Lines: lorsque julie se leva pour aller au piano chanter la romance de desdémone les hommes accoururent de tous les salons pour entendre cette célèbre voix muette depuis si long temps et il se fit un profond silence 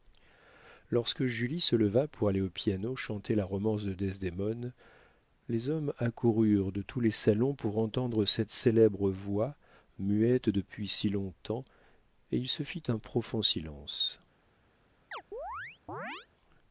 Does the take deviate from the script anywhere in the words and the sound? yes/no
yes